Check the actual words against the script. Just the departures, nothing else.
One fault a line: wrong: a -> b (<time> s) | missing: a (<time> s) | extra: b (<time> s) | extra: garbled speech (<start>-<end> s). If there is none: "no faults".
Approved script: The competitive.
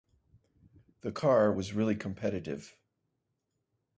extra: car was really (1.1 s)